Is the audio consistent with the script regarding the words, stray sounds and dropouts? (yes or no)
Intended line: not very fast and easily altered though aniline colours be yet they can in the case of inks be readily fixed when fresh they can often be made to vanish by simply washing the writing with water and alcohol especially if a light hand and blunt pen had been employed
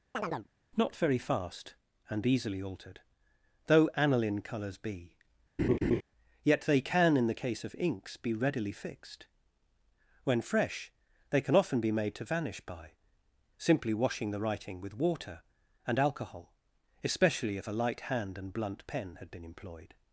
no